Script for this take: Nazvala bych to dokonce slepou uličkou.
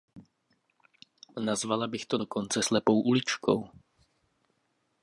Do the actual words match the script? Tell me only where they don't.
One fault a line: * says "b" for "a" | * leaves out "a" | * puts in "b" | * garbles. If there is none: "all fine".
all fine